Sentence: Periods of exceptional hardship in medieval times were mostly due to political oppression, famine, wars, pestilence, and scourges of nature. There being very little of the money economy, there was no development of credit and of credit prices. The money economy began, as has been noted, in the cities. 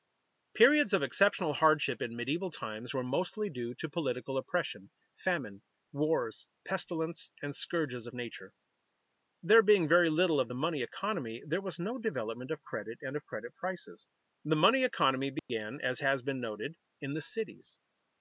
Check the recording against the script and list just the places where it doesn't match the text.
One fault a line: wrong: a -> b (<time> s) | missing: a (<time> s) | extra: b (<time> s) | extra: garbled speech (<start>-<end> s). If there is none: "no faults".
no faults